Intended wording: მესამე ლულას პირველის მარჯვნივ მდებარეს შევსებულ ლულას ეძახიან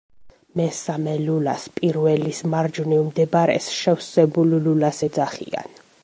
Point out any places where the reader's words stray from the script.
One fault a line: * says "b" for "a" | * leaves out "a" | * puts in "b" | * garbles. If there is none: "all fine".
all fine